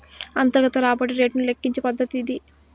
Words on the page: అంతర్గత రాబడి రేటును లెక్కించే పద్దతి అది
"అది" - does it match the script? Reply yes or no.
no